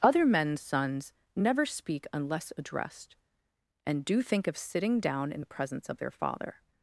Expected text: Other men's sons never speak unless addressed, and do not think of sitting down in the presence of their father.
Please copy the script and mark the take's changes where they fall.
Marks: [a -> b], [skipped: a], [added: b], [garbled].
Other men's sons never speak unless addressed, and do [skipped: not] think of sitting down in the presence of their father.